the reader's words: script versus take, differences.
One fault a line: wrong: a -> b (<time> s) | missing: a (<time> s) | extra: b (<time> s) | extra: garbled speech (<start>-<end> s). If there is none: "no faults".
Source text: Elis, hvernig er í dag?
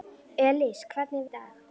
no faults